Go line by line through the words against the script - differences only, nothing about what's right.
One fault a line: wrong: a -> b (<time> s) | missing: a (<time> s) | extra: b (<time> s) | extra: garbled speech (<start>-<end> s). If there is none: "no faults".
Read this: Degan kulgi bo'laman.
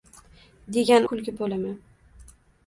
no faults